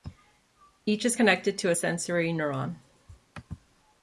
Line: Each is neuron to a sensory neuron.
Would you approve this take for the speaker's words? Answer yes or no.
no